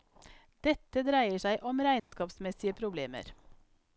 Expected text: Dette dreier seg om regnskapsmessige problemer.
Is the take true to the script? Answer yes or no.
yes